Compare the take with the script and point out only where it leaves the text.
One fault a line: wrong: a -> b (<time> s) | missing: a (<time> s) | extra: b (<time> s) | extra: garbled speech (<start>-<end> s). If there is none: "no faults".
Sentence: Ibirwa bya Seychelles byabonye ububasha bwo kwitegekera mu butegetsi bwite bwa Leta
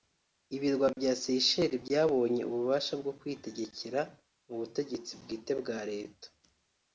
no faults